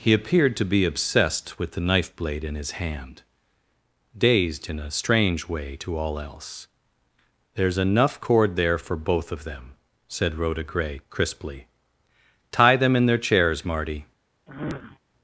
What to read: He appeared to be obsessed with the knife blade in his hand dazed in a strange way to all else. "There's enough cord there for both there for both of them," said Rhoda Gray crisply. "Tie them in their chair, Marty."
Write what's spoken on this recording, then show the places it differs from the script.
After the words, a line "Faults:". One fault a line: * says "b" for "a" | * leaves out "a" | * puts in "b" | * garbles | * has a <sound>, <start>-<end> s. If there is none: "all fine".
He appeared to be obsessed with the knife blade in his hand dazed in a strange way to all else. "There's enough cord there for both of them," said Rhoda Gray crisply. "Tie them in their chairs, Marty."
Faults:
* leaves out "there for both"
* says "chairs" for "chair"
* has a sniff, 14.5-15.0 s